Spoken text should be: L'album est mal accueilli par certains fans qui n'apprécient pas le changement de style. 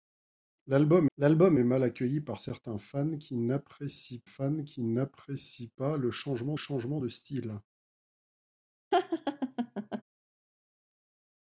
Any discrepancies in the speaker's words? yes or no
yes